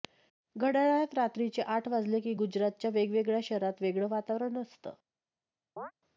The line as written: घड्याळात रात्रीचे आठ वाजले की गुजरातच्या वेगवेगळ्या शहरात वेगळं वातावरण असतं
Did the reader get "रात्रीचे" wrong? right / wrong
right